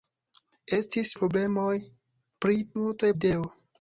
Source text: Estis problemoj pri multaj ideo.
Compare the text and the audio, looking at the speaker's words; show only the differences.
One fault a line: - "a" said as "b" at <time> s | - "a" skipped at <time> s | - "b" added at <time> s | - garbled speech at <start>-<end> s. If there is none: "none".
none